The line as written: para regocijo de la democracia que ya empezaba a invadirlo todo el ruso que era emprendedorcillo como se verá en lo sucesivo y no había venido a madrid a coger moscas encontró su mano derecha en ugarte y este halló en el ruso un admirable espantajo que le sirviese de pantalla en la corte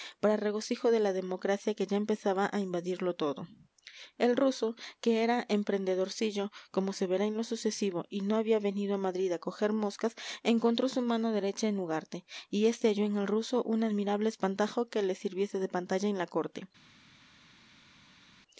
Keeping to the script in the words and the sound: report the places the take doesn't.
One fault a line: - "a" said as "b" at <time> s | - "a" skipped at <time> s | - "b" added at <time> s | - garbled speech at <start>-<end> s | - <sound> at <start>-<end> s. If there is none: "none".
none